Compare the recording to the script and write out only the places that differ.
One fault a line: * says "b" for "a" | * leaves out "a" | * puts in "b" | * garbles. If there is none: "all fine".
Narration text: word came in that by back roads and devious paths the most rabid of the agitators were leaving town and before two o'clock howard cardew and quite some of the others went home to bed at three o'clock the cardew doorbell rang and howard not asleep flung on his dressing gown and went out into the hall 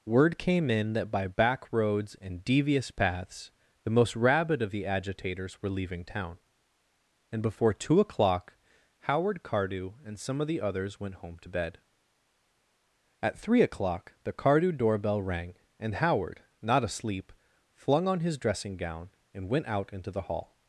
* leaves out "quite"